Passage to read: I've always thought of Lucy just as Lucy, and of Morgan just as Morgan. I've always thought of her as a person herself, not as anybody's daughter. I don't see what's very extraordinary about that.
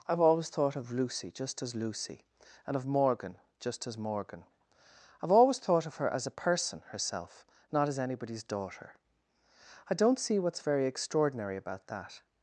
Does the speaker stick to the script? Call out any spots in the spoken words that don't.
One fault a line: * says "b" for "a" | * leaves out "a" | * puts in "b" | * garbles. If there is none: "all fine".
all fine